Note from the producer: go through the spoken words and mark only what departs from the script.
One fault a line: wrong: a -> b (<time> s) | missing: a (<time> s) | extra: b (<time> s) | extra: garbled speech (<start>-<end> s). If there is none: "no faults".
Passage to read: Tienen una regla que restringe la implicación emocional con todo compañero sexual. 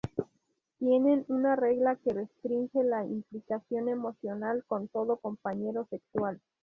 no faults